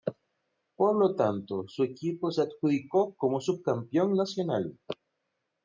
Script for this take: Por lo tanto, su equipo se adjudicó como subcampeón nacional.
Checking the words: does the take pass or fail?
pass